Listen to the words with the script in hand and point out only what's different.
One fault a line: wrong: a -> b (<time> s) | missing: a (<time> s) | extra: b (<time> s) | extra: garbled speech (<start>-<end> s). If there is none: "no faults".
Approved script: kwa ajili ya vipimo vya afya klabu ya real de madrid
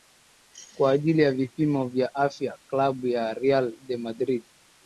no faults